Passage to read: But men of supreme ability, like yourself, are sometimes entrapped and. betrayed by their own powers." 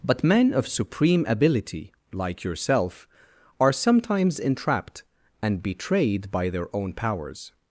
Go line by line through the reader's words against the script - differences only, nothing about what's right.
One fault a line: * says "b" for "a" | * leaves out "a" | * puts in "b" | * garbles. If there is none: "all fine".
all fine